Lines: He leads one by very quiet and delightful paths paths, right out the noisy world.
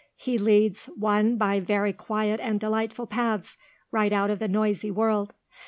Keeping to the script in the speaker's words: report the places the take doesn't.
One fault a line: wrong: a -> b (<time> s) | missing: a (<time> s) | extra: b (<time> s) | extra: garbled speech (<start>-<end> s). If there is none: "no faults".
missing: paths (3.6 s)
extra: of (4.3 s)